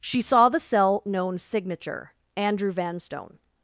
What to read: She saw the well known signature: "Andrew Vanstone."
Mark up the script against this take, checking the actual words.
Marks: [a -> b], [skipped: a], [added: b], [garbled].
She saw the [well -> cell] known signature: "Andrew Vanstone."